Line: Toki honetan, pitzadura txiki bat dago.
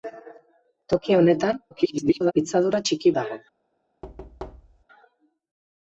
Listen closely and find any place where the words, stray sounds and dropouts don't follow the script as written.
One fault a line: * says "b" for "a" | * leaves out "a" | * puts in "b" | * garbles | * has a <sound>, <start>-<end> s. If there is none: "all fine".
* garbles
* leaves out "bat"
* has a thud, 4.0-4.8 s